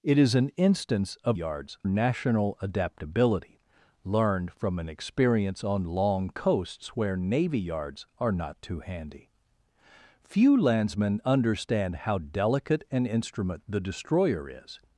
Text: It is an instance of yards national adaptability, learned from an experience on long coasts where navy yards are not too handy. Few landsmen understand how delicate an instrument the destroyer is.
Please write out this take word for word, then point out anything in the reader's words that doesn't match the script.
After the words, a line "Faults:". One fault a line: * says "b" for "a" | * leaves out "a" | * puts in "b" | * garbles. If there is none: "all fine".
It is an instance of yards national adaptability, learned from an experience on long coasts where navy yards are not too handy. Few landsmen understand how delicate an instrument the destroyer is.
Faults:
all fine